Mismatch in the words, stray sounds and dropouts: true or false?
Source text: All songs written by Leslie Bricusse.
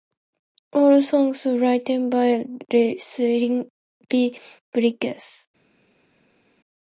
false